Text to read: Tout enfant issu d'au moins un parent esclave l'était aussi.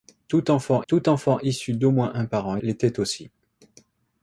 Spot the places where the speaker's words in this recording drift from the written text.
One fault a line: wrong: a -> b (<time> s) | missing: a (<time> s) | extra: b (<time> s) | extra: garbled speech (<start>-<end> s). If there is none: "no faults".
extra: tout enfant (0.9 s)
missing: esclave (2.6 s)